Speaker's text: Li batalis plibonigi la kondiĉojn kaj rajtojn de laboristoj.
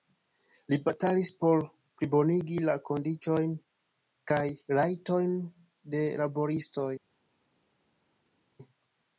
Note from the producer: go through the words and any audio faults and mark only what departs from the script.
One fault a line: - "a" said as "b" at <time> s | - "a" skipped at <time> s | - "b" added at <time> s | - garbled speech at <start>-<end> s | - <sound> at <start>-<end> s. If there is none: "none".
- "por" added at 1.4 s